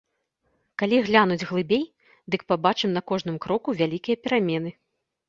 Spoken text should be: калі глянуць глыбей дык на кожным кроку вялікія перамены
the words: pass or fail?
fail